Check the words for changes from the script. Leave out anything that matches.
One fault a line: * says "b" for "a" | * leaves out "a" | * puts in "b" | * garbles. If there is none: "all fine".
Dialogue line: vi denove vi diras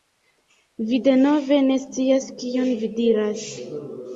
* puts in "ne scias kion"